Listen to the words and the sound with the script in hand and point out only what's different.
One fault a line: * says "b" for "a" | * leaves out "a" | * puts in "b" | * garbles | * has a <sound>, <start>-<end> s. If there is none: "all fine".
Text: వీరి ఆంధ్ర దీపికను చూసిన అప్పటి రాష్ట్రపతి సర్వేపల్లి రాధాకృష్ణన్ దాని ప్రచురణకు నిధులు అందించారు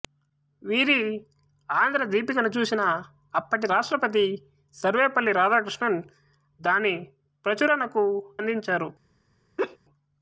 * leaves out "నిధులు"
* has a laugh, 9.6-9.8 s